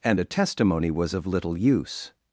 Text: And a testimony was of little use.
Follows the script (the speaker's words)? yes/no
yes